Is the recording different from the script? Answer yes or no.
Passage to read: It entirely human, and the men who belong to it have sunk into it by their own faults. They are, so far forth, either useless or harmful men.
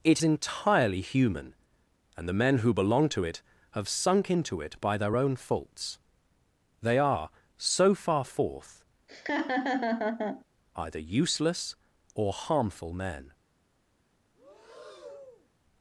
no